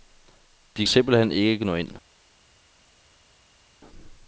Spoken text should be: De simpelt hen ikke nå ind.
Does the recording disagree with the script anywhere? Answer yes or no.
no